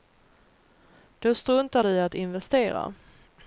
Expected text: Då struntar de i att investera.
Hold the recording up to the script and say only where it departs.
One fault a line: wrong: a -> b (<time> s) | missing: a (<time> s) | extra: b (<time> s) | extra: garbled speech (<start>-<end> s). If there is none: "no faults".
no faults